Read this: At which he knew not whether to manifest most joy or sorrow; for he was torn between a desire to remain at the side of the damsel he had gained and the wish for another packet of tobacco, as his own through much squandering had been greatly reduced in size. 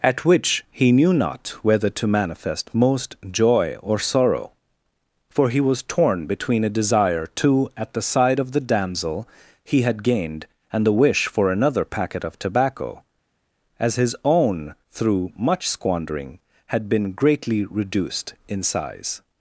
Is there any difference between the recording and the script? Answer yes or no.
yes